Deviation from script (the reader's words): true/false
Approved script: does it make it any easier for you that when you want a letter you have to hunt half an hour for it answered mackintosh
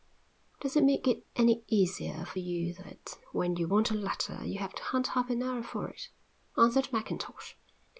false